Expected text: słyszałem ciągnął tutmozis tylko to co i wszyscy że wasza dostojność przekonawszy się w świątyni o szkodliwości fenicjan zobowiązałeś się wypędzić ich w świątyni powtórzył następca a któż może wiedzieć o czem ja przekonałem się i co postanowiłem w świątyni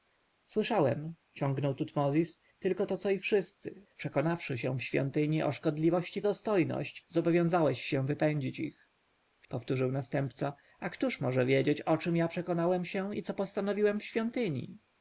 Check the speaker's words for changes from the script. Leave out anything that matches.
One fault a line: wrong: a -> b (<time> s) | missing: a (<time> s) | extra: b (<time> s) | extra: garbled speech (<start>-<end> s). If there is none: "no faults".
missing: że wasza dostojność (3.9 s)
wrong: fenicjan -> dostojność (6.2 s)
missing: świątyni (9.5 s)